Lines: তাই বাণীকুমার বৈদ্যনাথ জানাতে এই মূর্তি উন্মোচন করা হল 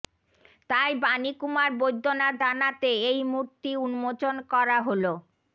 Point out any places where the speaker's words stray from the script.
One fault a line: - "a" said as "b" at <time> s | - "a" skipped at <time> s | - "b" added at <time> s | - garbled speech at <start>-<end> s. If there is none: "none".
none